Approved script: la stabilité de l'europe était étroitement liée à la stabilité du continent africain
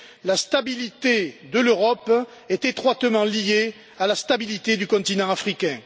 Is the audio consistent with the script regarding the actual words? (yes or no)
no